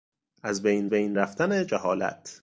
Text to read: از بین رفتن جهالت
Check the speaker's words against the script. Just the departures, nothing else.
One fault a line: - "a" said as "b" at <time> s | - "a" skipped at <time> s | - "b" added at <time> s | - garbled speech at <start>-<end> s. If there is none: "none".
- "بین" added at 0.9 s